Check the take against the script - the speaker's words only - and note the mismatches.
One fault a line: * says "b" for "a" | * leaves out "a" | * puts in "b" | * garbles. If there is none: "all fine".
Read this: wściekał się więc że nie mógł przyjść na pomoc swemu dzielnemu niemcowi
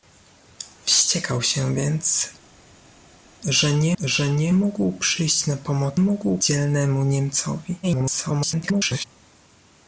* puts in "że nie"
* says "mógł" for "swemu"
* garbles